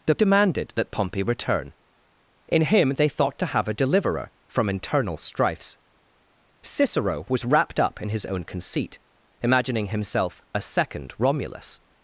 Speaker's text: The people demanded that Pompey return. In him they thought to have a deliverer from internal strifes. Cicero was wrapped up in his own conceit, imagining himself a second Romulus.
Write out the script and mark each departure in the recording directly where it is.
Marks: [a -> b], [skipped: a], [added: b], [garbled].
The [skipped: people] demanded that Pompey return. In him they thought to have a deliverer from internal strifes. Cicero was wrapped up in his own conceit, imagining himself a second Romulus.